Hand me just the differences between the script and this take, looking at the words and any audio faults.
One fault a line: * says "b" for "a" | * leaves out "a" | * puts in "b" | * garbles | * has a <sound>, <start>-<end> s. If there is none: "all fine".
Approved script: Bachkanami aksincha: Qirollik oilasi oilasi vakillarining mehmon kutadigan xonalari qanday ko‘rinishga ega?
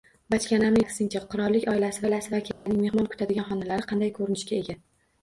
* has a dropout, 2.5-2.7 s